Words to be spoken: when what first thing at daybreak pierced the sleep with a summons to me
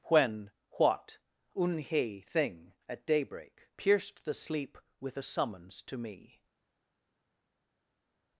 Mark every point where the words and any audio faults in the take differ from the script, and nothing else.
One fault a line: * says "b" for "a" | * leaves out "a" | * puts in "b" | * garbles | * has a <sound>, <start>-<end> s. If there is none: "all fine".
* says "unhe" for "first"